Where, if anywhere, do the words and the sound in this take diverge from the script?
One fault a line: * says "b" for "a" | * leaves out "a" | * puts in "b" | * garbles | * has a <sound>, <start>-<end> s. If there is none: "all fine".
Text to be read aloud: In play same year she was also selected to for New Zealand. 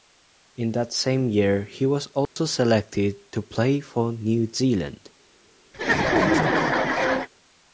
* says "that" for "play"
* says "he" for "she"
* has a dropout, 2.3-2.4 s
* puts in "play"
* has a laugh, 5.7-7.3 s